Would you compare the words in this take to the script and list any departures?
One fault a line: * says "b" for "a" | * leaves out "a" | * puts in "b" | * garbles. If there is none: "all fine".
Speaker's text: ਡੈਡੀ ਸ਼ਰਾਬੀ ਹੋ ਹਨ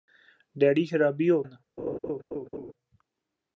all fine